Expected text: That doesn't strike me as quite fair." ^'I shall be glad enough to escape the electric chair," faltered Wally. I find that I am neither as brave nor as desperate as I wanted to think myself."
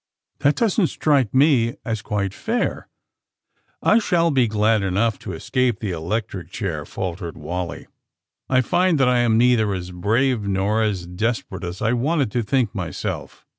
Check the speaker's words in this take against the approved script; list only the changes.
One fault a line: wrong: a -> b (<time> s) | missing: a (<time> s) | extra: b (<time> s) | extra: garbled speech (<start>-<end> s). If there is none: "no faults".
no faults